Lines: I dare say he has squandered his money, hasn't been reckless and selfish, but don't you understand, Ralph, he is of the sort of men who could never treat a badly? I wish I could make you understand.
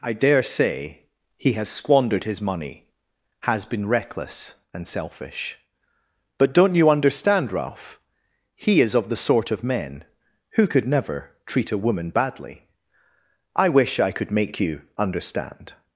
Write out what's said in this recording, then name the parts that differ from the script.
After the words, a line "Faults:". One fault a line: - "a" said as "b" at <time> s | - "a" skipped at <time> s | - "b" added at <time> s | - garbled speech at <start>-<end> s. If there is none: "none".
I dare say he has squandered his money, has been reckless and selfish, but don't you understand, Ralph, he is of the sort of men who could never treat a woman badly? I wish I could make you understand.
Faults:
- "hasn't" said as "has" at 3.4 s
- "woman" added at 11.8 s